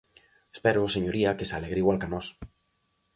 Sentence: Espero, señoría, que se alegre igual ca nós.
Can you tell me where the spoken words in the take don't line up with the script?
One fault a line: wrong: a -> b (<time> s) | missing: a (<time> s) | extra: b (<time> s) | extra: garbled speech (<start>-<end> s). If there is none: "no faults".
no faults